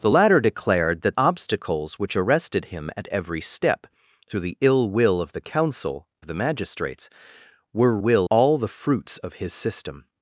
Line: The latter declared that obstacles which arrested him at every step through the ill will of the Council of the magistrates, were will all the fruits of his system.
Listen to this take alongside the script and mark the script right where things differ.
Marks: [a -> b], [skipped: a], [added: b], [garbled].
The latter declared that obstacles which arrested him at every step through the ill will of the Council of the magistrates, were will all the fruits of his system.